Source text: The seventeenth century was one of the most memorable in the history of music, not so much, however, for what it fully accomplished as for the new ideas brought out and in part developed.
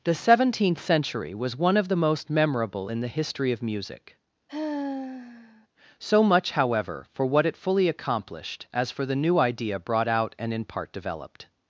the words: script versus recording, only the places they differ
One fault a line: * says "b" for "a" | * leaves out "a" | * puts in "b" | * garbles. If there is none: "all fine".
* leaves out "not"
* says "idea" for "ideas"